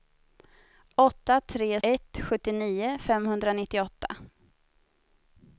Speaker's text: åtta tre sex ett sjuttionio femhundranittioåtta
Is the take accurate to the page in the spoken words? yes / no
no